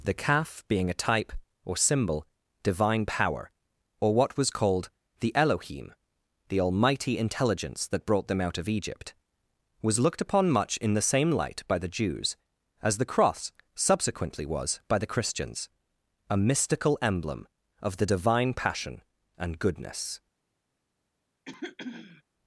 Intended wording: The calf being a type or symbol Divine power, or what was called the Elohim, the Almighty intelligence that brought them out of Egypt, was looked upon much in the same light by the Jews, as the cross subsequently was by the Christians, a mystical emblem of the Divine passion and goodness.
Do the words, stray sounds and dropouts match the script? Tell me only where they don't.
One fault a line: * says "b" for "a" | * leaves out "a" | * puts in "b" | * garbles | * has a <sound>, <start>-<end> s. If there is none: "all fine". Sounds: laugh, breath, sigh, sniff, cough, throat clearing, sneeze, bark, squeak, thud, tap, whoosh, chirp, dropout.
* has a throat clearing, 21.4-22.2 s